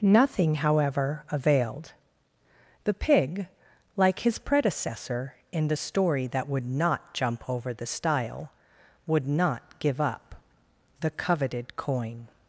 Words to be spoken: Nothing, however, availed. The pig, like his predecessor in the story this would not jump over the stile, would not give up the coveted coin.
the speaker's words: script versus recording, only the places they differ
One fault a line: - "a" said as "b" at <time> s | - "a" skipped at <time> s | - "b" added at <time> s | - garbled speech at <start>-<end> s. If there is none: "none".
- "this" said as "that" at 6.3 s